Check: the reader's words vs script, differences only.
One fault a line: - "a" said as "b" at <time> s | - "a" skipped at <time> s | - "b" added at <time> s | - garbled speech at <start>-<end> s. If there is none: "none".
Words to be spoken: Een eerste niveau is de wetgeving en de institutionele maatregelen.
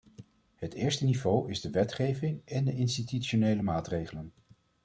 - "Een" said as "Het" at 0.6 s